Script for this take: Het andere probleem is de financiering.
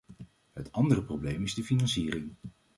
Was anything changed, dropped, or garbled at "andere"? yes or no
no